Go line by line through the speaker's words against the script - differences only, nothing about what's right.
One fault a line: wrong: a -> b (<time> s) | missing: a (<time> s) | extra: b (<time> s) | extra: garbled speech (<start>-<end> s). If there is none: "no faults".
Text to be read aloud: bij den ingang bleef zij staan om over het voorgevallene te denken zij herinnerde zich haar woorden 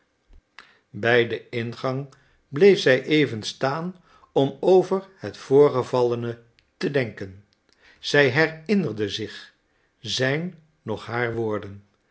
extra: even (3.0 s)
extra: zijn noch (10.0 s)